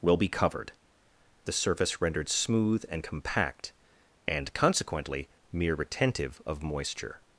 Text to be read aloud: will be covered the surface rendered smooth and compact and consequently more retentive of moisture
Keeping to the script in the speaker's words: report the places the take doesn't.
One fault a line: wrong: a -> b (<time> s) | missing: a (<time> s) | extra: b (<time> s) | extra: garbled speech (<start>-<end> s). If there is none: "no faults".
wrong: more -> mere (5.5 s)